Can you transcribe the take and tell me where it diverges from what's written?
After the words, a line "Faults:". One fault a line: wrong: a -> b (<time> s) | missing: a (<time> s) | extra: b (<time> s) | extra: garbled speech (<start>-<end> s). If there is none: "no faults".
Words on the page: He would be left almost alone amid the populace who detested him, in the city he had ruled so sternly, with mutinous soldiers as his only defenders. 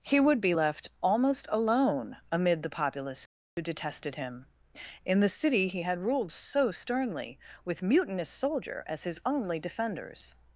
He would be left almost alone amid the populace who detested him, in the city he had ruled so sternly, with mutinous soldier as his only defenders.
Faults:
wrong: soldiers -> soldier (8.3 s)